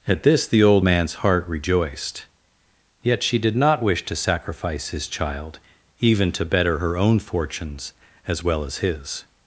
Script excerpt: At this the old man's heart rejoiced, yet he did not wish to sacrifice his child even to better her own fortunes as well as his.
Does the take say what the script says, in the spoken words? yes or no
no